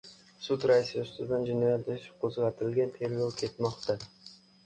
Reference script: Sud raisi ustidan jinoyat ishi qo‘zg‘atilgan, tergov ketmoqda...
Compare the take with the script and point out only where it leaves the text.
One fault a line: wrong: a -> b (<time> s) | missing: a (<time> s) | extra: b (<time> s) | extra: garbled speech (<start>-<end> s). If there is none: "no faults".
no faults